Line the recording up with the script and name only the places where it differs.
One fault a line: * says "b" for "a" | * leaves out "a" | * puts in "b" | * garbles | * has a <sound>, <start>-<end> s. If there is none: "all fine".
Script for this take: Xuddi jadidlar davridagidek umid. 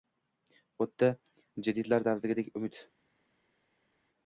all fine